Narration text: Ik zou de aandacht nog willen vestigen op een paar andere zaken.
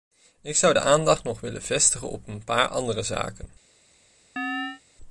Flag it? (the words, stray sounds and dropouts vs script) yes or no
yes